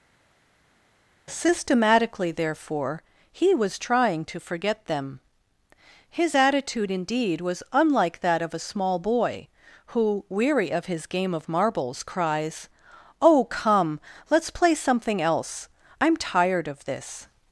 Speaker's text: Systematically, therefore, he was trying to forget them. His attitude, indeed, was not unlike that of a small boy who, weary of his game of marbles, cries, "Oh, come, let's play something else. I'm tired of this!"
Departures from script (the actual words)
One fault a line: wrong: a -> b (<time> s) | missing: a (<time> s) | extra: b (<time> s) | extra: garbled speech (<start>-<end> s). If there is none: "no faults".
missing: not (7.6 s)